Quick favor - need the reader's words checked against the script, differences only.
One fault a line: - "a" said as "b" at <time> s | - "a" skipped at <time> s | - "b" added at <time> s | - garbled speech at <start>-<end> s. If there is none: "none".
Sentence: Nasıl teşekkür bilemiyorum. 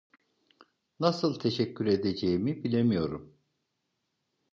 - "edeceğimi" added at 1.9 s